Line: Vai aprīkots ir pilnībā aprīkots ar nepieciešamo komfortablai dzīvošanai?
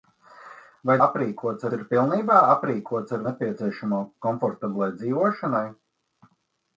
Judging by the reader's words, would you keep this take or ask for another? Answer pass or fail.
pass